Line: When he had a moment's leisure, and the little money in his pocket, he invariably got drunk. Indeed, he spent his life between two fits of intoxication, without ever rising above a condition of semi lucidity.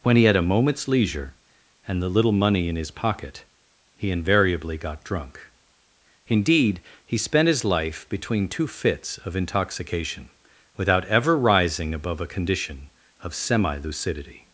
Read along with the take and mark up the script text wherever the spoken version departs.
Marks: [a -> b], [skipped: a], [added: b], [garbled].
When he had a moment's leisure, and the little money in his pocket, he invariably got drunk. Indeed, he spent his life between two fits of intoxication, without ever rising above a condition of semi lucidity.